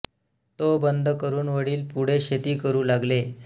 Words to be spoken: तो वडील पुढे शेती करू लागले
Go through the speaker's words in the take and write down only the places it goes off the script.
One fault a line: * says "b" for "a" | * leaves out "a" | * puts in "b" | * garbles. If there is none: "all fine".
* puts in "बंद करून"